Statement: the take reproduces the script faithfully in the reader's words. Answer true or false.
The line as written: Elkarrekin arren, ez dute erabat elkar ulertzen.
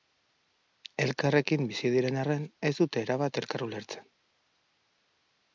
false